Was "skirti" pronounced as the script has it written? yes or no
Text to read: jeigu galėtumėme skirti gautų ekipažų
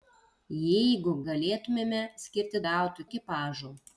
yes